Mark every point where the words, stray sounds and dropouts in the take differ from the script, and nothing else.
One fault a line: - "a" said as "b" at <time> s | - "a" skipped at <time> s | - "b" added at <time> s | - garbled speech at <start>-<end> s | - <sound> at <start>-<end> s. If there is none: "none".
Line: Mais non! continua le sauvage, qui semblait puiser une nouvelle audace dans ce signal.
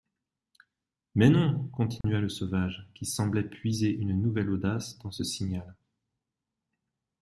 - dropout at 2.0-2.0 s